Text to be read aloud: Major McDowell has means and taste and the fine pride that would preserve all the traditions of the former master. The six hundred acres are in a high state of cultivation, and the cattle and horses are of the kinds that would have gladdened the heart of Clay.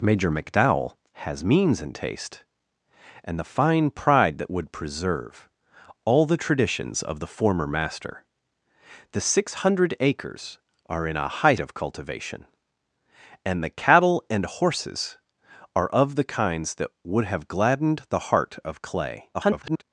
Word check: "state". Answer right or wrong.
wrong